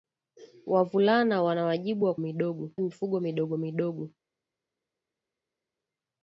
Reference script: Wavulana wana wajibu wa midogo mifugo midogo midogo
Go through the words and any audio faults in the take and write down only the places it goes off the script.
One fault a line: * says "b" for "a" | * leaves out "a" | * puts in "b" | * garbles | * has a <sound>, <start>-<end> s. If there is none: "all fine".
all fine